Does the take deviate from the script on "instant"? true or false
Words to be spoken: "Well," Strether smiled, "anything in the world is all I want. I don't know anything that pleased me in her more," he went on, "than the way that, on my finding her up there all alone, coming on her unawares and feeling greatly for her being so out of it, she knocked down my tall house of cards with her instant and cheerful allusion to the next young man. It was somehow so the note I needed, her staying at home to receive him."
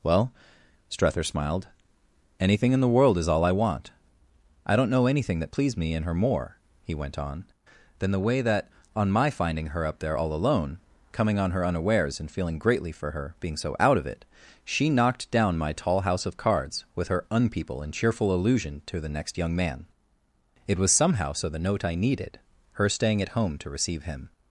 true